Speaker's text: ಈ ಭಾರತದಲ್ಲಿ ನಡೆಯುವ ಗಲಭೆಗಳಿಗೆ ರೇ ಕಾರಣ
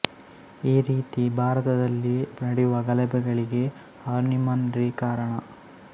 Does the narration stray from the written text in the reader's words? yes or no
yes